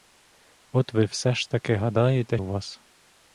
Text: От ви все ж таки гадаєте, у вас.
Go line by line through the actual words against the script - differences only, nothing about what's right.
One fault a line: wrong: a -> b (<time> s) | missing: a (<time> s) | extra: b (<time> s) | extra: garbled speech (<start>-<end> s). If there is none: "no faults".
no faults